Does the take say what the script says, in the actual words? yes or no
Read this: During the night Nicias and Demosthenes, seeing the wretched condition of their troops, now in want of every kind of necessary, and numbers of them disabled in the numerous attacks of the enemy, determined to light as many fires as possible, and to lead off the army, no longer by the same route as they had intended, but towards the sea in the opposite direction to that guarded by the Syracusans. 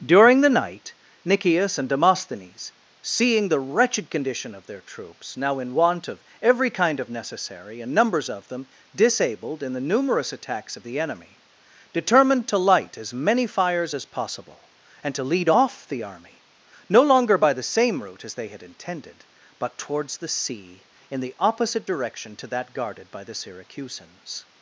yes